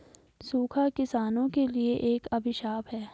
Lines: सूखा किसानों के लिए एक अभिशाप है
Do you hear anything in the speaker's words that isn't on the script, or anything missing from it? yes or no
no